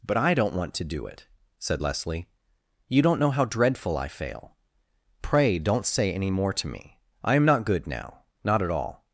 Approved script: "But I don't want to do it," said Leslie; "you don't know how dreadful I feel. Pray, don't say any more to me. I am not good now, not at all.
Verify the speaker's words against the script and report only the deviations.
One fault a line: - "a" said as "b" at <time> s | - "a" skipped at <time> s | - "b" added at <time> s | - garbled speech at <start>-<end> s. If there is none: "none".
- "feel" said as "fail" at 4.1 s